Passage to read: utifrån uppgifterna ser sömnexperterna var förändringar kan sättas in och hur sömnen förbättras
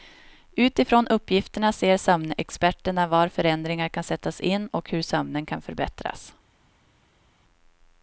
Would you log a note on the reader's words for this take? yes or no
yes